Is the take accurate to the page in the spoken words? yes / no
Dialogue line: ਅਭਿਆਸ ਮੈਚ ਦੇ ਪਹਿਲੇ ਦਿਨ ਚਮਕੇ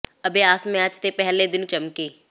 yes